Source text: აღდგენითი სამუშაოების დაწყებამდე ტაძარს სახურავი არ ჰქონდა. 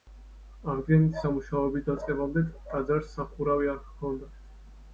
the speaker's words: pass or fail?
pass